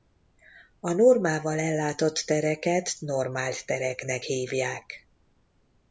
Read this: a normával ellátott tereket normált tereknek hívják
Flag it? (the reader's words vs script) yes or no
no